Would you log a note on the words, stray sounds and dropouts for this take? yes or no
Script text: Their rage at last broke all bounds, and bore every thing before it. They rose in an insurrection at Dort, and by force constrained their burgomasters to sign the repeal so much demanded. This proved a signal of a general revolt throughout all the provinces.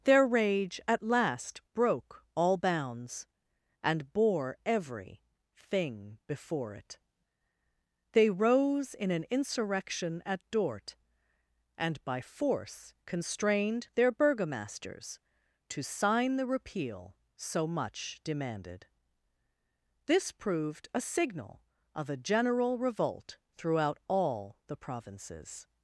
no